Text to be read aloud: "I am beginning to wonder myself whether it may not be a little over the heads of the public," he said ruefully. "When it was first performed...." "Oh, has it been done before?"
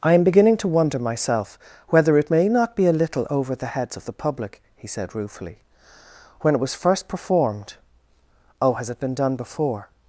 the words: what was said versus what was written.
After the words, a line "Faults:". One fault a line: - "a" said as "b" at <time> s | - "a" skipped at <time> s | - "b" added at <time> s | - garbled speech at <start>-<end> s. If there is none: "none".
"I am beginning to wonder myself whether it may not be a little over the heads of the public," he said ruefully. "When it was first performed...." "Oh, has it been done before?"
Faults:
none